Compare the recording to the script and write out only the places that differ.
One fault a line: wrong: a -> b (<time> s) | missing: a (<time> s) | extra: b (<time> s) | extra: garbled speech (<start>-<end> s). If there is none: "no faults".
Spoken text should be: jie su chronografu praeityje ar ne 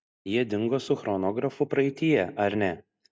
extra: dingo (0.5 s)